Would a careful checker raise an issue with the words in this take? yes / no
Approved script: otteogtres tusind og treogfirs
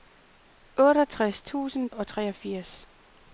no